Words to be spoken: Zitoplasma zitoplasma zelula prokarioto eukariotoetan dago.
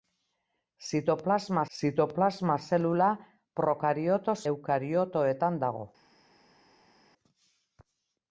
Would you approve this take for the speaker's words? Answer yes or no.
yes